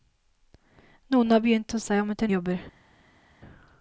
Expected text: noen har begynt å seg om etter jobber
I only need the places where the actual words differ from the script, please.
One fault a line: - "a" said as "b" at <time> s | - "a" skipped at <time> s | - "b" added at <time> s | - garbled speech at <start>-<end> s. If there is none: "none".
none